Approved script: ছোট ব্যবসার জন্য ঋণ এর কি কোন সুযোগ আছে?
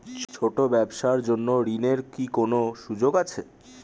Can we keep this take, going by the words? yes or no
yes